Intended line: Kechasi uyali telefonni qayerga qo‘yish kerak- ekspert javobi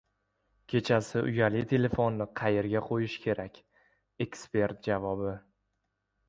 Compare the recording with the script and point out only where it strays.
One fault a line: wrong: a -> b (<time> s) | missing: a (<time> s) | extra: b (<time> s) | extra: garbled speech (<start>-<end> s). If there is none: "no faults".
no faults